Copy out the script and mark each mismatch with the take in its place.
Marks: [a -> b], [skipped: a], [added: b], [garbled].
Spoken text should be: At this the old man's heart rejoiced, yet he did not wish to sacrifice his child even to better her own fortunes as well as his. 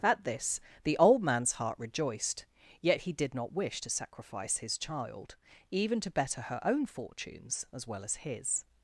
At this the old man's heart rejoiced, yet he did not wish to sacrifice his child even to better her own fortunes as well as his.